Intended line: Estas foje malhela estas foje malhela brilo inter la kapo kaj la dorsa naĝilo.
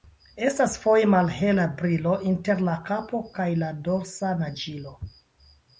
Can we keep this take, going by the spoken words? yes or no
no